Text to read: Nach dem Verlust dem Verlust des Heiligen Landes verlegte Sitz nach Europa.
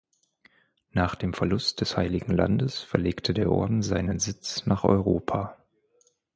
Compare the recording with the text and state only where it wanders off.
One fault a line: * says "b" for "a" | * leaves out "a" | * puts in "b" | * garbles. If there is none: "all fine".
* leaves out "dem Verlust"
* puts in "der Orden seinen"